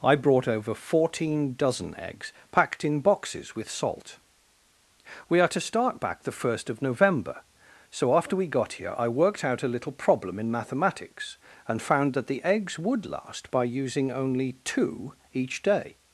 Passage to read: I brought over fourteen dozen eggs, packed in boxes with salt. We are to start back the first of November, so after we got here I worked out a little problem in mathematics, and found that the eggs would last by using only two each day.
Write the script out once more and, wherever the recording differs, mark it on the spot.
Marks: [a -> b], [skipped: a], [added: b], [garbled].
I brought over fourteen dozen eggs, packed in boxes with salt. We are to start back the first of November, so after we got here I worked out a little problem in mathematics, and found that the eggs would last by using only two each day.